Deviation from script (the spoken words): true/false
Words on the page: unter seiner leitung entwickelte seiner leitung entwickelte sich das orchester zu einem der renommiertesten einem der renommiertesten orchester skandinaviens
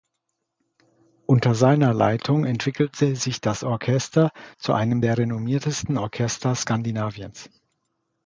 true